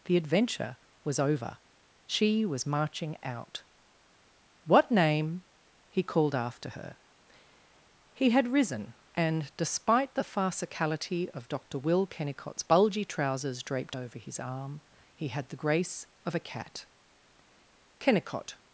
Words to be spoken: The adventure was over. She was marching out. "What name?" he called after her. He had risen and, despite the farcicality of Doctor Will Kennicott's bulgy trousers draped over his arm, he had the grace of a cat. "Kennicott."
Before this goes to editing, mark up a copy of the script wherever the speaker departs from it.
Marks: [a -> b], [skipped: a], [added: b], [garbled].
The adventure was over. She was marching out. "What name?" he called after her. He had risen and, despite the farcicality of Doctor Will Kennicott's bulgy trousers draped over his arm, he had the grace of a cat. "Kennicott."